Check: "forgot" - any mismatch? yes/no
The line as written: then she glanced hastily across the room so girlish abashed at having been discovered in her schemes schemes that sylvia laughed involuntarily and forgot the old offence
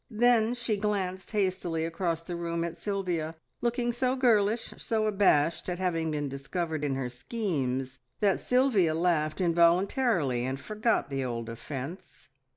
no